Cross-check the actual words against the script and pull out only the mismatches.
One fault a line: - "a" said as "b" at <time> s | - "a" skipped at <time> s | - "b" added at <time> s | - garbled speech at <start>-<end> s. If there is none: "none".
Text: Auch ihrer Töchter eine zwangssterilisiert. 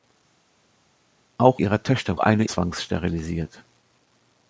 none